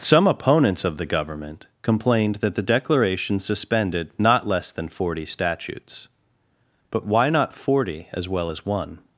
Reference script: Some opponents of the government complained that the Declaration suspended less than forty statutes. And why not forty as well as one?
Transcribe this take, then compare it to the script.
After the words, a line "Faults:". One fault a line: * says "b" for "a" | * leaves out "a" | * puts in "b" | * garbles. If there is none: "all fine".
Some opponents of the government complained that the Declaration suspended not less than forty statutes. But why not forty as well as one?
Faults:
* puts in "not"
* says "But" for "And"